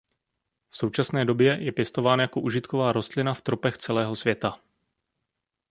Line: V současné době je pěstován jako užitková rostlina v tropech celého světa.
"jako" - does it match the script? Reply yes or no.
yes